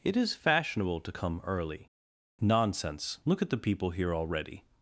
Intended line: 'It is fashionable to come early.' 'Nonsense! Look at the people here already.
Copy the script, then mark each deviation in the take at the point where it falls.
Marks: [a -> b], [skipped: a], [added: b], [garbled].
'It is fashionable to come early.' 'Nonsense! Look at the people here already.